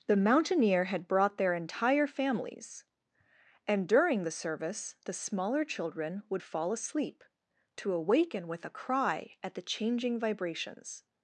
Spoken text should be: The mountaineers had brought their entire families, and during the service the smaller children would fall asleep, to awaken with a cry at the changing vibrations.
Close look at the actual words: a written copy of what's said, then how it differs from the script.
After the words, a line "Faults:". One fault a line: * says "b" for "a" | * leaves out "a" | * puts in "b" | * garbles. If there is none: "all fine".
The mountaineer had brought their entire families, and during the service the smaller children would fall asleep, to awaken with a cry at the changing vibrations.
Faults:
* says "mountaineer" for "mountaineers"